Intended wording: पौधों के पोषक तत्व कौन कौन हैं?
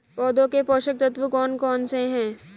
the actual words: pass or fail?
fail